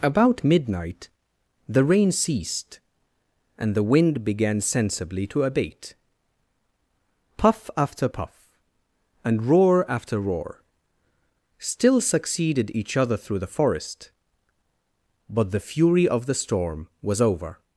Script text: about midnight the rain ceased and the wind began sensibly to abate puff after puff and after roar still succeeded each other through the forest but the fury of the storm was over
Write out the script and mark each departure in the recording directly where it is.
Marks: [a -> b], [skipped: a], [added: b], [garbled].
about midnight the rain ceased and the wind began sensibly to abate puff after puff and [added: roar] after roar still succeeded each other through the forest but the fury of the storm was over